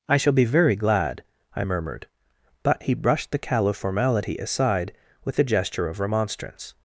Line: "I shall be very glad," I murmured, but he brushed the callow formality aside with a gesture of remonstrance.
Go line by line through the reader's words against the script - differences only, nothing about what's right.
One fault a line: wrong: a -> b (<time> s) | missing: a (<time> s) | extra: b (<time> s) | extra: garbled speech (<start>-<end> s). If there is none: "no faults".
no faults